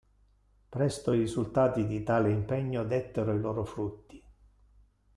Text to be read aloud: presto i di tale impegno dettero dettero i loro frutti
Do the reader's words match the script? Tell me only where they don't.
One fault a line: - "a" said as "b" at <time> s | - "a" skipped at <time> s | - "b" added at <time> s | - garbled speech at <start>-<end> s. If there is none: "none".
- "risultati" added at 1.2 s
- "dettero" skipped at 3.3 s